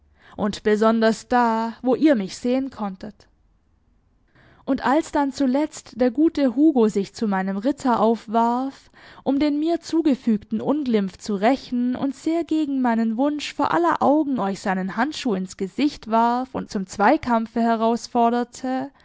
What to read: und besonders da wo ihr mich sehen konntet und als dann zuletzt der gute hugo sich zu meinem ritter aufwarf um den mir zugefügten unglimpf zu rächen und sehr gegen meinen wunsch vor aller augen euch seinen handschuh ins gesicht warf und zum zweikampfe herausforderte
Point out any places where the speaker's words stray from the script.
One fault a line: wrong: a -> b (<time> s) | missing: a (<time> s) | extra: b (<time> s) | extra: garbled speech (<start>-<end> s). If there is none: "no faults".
no faults